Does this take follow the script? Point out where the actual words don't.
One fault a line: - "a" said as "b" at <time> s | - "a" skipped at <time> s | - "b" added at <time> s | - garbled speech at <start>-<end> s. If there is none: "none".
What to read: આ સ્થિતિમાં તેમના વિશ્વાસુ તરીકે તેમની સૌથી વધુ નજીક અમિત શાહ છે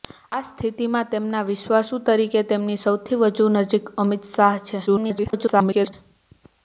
- garbled speech at 4.9-5.9 s